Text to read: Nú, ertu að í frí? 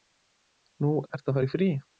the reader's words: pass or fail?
fail